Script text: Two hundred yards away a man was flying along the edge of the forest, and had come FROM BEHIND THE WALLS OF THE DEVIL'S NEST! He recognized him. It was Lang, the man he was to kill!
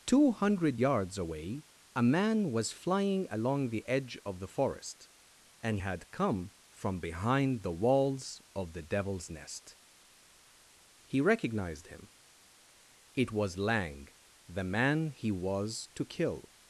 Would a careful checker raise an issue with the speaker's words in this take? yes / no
no